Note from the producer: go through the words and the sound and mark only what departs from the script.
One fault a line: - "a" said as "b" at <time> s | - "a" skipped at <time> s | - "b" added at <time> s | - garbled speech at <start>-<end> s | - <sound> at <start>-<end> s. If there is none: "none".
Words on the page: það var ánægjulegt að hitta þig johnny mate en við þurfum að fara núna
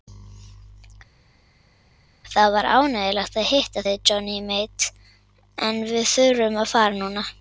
none